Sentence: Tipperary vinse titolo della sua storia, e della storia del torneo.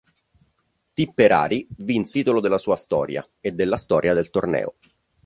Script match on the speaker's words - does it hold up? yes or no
yes